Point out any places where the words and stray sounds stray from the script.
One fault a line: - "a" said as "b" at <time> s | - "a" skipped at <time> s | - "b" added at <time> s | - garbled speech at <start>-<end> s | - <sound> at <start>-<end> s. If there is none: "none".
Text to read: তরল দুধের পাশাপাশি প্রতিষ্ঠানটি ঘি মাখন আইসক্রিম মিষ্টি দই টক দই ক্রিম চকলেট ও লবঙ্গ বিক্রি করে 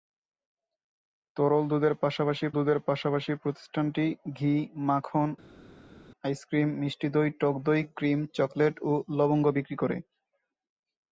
- "দুধের পাশাপাশি" added at 2.5 s